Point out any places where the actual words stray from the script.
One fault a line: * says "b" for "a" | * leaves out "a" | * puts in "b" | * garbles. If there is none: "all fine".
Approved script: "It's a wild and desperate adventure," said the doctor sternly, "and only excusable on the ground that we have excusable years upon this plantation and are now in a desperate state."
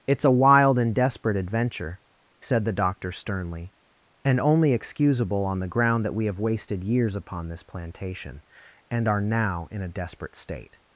* says "wasted" for "excusable"